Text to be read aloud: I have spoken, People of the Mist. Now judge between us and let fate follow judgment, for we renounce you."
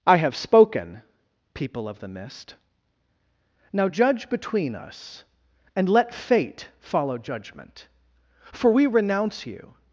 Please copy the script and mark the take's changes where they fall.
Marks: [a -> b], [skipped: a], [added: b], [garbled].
I have spoken, People of the Mist. Now judge between us and let fate follow judgment, for we renounce you."